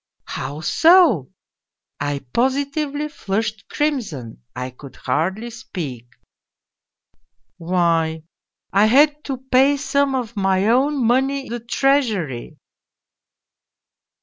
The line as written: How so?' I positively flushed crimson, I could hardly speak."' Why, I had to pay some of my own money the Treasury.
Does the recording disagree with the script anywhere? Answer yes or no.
no